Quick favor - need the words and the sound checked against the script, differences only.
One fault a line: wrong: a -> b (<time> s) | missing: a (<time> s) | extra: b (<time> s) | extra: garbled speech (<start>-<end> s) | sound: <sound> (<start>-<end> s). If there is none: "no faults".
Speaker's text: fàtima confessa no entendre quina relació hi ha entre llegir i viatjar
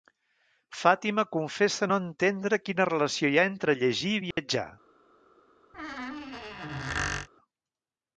sound: dropout (4.3-4.4 s)
sound: squeak (5.7-7.3 s)